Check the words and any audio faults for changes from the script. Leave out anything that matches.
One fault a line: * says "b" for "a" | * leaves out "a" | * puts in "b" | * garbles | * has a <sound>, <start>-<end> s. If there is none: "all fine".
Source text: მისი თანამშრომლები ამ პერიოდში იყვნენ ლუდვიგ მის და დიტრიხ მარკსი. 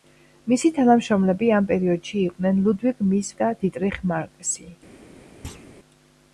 * has a thud, 5.4-5.7 s